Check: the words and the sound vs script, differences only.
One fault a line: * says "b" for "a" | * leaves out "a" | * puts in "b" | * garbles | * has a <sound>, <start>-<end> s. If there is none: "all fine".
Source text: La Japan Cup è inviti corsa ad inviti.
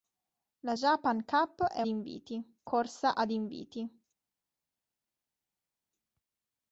all fine